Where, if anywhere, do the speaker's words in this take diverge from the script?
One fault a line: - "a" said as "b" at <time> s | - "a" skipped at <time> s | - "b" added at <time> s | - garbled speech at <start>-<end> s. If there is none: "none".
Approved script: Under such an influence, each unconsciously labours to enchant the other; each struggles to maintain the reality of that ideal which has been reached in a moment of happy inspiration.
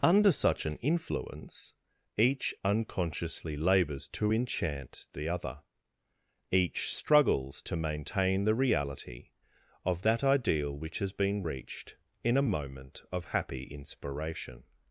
none